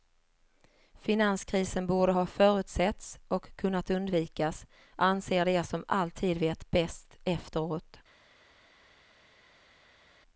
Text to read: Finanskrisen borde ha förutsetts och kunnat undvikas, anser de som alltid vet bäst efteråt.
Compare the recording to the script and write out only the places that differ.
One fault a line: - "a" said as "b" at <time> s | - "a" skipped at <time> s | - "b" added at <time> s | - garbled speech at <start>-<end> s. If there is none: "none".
none